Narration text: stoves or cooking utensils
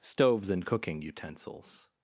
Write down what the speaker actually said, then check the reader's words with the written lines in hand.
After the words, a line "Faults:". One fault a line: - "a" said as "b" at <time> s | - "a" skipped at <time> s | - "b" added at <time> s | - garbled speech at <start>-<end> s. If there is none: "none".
stoves and cooking utensils
Faults:
- "or" said as "and" at 0.5 s